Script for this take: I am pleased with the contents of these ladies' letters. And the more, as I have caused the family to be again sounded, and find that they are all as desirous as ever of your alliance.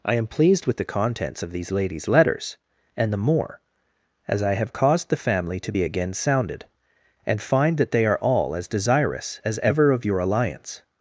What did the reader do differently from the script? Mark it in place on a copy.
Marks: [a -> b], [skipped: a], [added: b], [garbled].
I am pleased with the contents of these ladies' letters. And the more, as I have caused the family to be again sounded, and find that they are all as desirous as ever of your alliance.